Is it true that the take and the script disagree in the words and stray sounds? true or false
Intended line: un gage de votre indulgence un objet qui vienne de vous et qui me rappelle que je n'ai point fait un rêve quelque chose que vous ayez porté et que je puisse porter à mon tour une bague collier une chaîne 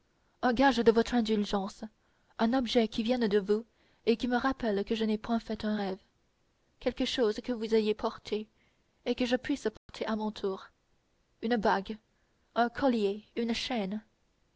true